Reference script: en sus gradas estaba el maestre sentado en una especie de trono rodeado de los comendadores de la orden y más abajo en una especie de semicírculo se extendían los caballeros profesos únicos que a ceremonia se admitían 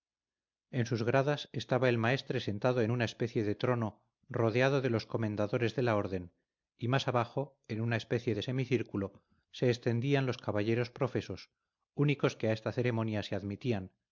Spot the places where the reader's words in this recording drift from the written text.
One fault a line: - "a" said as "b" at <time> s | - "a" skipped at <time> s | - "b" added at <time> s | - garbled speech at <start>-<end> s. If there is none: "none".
- "esta" added at 12.5 s